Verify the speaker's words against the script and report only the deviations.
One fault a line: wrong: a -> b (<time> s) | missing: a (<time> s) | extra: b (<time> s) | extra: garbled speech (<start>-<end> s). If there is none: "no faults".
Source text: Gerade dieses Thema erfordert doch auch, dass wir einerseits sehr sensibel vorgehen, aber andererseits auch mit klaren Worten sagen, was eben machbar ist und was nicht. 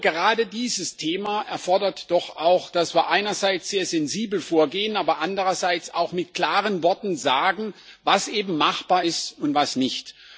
no faults